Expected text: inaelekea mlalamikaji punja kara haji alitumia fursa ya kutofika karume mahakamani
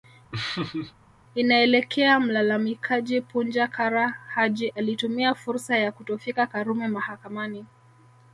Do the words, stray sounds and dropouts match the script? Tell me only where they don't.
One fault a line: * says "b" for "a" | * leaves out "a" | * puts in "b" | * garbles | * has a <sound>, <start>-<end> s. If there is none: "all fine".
* has a laugh, 0.3-0.9 s